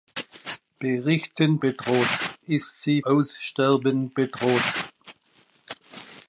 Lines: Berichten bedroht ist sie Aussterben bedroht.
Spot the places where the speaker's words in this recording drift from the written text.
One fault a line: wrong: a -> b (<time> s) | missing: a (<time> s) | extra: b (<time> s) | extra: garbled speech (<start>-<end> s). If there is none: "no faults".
no faults